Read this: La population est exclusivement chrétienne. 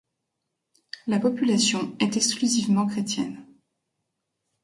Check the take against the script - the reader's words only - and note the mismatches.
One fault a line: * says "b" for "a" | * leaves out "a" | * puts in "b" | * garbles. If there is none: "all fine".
all fine